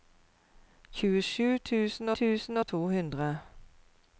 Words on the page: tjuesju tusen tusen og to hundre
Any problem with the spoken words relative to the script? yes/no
no